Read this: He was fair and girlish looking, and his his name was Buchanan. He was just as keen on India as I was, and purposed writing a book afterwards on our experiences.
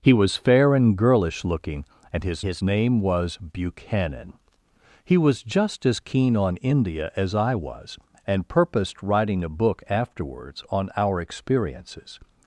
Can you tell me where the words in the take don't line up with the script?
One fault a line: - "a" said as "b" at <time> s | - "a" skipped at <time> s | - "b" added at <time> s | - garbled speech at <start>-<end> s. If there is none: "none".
none